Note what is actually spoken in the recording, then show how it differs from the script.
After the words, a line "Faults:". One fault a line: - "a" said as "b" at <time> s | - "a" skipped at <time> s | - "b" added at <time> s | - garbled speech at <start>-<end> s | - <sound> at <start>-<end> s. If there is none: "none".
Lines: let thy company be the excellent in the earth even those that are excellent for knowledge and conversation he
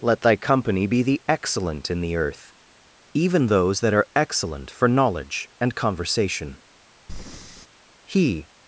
let thy company be the excellent in the earth even those that are excellent for knowledge and conversation he
Faults:
- breath at 7.1-7.7 s